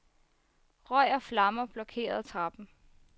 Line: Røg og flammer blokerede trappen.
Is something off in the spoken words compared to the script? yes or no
no